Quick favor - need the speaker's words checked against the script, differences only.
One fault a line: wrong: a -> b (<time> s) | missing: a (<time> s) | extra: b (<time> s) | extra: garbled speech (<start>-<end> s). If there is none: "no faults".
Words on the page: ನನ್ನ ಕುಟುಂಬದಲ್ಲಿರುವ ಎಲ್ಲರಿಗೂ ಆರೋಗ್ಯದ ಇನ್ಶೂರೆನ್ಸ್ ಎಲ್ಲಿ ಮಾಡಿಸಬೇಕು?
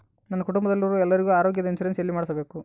no faults